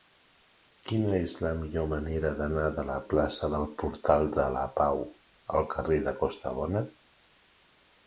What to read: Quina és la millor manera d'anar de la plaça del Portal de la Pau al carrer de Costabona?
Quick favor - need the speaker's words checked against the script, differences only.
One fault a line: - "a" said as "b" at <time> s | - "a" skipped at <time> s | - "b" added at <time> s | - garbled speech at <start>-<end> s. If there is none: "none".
none